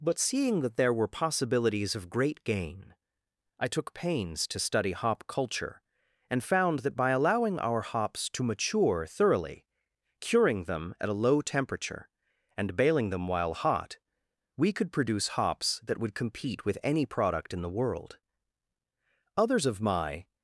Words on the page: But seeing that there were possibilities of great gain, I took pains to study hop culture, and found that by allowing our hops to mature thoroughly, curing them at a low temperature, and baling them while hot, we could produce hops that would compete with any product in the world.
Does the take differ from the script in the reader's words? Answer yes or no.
yes